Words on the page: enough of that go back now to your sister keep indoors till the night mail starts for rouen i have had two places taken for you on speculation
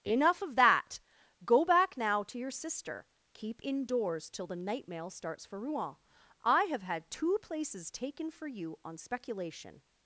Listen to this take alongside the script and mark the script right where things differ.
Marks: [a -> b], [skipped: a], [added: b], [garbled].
enough of that go back now to your sister keep indoors till the night mail starts for rouen i have had two places taken for you on speculation